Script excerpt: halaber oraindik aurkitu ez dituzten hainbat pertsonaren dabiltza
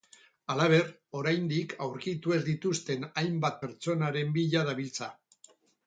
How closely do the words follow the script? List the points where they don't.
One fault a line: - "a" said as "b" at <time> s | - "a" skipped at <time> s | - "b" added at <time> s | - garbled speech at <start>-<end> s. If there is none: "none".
- "bila" added at 4.4 s